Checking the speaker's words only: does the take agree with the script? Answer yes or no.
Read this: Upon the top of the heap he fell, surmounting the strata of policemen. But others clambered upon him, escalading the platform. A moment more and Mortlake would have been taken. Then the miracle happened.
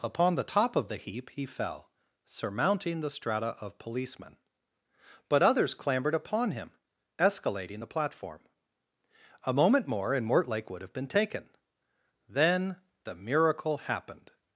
yes